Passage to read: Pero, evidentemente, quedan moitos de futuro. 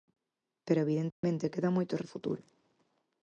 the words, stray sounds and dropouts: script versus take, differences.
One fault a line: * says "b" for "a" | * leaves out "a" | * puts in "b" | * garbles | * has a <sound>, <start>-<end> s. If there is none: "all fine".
* has a dropout, 1.1-1.2 s